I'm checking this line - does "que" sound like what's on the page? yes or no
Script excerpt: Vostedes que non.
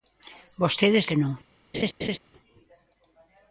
yes